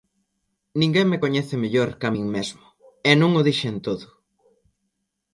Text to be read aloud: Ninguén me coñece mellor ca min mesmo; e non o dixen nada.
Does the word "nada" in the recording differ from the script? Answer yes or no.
yes